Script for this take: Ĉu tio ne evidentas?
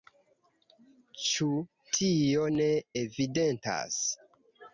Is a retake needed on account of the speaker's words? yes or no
no